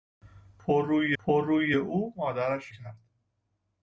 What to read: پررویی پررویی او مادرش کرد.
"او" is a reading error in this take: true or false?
false